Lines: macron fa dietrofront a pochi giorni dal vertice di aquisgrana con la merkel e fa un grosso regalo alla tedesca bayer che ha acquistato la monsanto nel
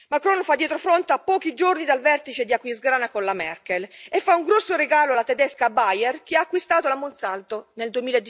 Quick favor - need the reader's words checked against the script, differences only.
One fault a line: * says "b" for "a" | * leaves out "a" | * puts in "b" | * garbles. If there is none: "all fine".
all fine